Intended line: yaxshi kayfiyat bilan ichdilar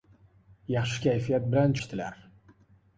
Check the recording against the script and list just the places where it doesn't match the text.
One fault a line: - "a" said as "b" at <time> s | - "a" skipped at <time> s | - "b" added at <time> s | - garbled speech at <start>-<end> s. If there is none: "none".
none